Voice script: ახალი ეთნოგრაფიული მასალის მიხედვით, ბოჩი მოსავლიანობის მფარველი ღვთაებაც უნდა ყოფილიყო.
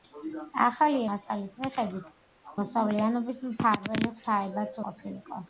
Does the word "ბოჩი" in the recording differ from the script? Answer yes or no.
yes